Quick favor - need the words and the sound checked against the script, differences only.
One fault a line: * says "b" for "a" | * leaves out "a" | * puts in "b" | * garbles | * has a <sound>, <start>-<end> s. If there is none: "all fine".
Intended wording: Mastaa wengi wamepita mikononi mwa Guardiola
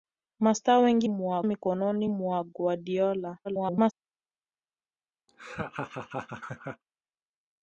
* says "mwa" for "wamepita"
* garbles
* has a laugh, 5.3-6.8 s